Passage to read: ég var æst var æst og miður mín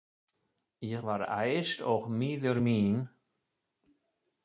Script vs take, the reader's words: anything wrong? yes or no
yes